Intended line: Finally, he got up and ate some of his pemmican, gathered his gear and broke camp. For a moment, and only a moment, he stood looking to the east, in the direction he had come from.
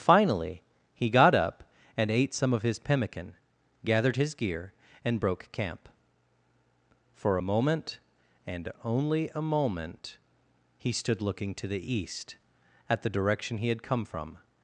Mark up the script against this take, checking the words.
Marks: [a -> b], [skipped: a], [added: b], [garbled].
Finally, he got up and ate some of his pemmican, gathered his gear and broke camp. For a moment, and only a moment, he stood looking to the east, [in -> at] the direction he had come from.